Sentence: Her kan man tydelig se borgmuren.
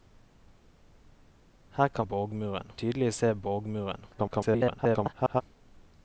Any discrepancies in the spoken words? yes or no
yes